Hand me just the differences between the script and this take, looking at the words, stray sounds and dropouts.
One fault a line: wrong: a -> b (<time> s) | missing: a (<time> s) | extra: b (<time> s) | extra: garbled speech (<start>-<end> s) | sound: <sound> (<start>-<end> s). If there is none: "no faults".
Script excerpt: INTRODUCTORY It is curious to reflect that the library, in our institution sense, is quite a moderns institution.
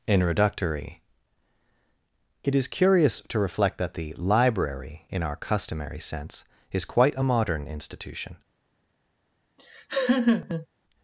wrong: institution -> customary (5.3 s)
wrong: moderns -> modern (7.2 s)
sound: laugh (9.6-10.7 s)